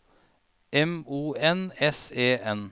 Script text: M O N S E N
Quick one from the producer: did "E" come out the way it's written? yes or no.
yes